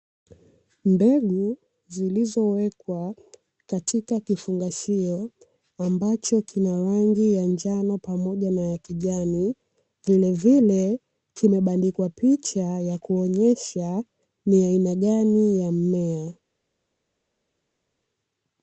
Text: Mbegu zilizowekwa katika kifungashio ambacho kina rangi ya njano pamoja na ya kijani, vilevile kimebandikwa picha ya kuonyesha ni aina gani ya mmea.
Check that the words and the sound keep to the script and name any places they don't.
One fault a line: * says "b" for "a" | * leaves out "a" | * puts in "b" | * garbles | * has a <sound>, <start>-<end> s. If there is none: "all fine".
all fine